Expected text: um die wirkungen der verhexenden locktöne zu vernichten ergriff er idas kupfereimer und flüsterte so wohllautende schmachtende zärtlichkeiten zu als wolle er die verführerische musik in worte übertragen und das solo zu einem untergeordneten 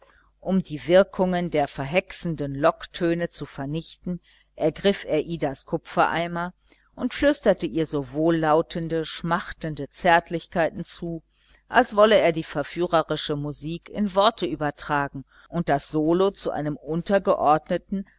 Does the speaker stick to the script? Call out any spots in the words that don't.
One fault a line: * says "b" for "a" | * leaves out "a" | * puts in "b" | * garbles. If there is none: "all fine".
* puts in "ihr"